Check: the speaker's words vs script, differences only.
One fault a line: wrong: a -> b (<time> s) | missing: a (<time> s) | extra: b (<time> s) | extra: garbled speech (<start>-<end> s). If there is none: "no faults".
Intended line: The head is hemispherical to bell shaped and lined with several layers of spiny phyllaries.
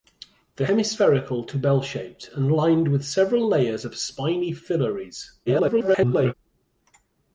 missing: head is (0.7 s)
extra: garbled speech (5.5-6.3 s)